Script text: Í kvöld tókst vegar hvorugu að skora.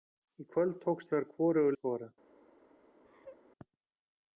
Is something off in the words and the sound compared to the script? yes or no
yes